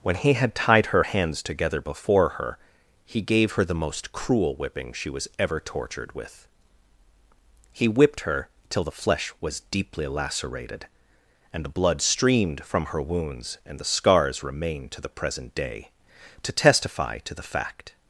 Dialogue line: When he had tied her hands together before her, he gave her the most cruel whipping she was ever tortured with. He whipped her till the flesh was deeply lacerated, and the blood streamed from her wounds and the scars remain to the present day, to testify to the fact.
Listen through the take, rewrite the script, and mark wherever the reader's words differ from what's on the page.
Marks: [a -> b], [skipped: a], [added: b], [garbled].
When he had tied her hands together before her, he gave her the most cruel whipping she was ever tortured with. He whipped her till the flesh was deeply lacerated, and the blood streamed from her wounds and the scars remain to the present day, to testify to the fact.